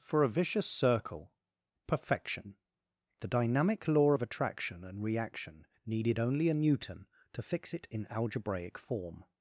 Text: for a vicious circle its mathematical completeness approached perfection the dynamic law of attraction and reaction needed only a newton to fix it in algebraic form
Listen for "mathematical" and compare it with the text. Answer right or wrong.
wrong